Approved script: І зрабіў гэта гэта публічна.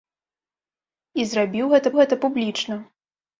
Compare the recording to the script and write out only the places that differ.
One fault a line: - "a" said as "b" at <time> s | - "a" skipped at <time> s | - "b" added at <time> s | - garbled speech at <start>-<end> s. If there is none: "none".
none